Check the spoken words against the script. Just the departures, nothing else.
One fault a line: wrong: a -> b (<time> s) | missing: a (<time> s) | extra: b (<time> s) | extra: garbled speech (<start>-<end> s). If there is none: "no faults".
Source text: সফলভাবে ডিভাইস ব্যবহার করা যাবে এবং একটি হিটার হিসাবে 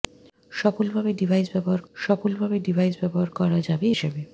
wrong: করা যাবে এবং একটি হিটার -> সফলভাবে ডিভাইস ব্যবহার করা যাবে (2.0 s)